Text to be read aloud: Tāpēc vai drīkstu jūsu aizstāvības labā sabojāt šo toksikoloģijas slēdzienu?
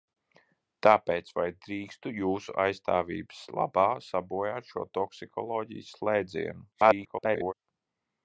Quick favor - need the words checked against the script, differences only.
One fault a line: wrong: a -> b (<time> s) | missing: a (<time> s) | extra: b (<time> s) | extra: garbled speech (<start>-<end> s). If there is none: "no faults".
extra: garbled speech (6.7-7.5 s)